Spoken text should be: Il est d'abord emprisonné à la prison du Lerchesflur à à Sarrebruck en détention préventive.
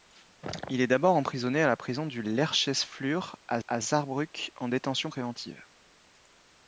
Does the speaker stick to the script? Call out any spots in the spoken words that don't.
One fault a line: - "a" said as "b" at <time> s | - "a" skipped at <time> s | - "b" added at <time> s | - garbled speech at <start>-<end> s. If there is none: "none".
none